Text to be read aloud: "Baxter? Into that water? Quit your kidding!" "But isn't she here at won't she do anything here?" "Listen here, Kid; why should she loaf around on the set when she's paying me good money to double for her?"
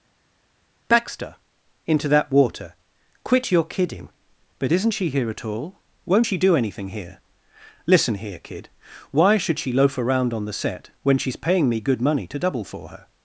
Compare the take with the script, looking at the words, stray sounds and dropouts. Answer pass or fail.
fail